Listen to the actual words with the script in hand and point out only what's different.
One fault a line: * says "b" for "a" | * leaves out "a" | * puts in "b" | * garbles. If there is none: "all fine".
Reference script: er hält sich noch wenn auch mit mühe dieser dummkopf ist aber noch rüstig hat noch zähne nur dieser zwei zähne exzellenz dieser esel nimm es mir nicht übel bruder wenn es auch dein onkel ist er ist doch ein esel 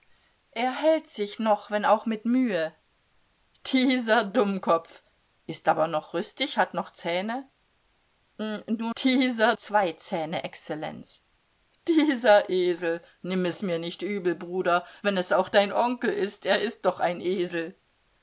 all fine